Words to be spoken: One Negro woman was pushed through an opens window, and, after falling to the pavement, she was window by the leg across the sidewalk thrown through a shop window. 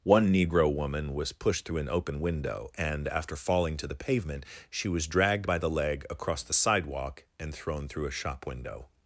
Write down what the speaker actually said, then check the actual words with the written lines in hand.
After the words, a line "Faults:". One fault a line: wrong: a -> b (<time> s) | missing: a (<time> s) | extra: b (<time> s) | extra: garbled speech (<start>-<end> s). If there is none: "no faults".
One Negro woman was pushed through an open window, and, after falling to the pavement, she was dragged by the leg across the sidewalk and thrown through a shop window.
Faults:
wrong: opens -> open (1.9 s)
wrong: window -> dragged (5.0 s)
extra: and (7.4 s)